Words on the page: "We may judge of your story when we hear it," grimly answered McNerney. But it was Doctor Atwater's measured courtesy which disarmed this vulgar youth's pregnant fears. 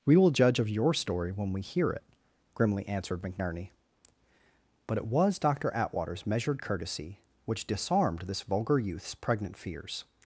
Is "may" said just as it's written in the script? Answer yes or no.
no